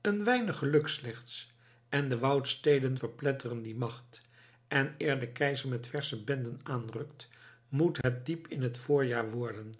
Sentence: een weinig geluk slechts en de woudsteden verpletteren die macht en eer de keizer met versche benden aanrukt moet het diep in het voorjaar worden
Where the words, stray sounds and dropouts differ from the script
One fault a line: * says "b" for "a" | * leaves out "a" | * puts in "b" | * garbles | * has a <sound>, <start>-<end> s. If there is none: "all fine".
* has a dropout, 8.0-8.0 s